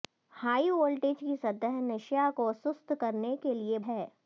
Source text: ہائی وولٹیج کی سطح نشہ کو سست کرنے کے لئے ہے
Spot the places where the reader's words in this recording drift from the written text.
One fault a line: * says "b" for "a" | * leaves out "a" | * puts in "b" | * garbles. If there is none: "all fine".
all fine